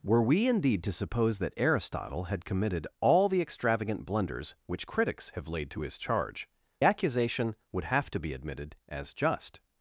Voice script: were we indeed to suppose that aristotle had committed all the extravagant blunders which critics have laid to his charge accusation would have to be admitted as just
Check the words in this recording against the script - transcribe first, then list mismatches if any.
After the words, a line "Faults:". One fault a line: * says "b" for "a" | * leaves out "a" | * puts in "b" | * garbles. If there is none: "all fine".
were we indeed to suppose that aristotle had committed all the extravagant blunders which critics have laid to his charge accusation would have to be admitted as just
Faults:
all fine